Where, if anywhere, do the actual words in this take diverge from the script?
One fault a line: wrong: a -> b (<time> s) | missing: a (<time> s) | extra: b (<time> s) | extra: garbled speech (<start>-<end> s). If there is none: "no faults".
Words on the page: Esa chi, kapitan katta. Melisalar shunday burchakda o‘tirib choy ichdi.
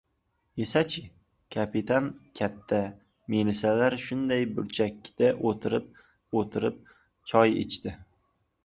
extra: o‘tirib (6.4 s)